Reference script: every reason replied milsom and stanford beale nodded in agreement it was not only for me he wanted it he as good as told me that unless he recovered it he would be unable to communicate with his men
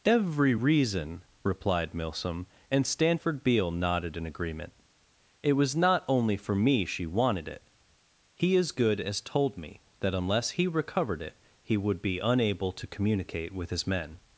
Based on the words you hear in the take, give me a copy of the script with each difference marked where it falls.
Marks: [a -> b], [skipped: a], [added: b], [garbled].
every reason replied milsom and stanford beale nodded in agreement it was not only for me [he -> she] wanted it he as good as told me that unless he recovered it he would be unable to communicate with his men